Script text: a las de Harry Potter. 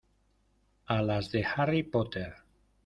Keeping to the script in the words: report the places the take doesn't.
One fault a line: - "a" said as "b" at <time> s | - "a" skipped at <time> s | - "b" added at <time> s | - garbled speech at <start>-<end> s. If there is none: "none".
none